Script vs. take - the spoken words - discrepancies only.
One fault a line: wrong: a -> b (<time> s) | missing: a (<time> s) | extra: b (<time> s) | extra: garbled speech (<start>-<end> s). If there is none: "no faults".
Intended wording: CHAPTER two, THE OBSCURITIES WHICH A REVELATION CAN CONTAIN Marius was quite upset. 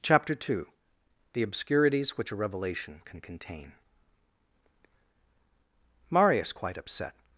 missing: was (6.5 s)